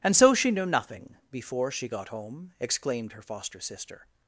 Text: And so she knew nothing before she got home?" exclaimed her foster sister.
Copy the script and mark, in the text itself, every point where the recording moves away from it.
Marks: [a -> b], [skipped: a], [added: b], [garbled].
And so she knew nothing before she got home?" exclaimed her foster sister.